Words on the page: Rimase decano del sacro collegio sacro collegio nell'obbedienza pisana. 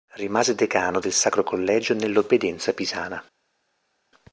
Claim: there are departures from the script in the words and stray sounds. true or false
true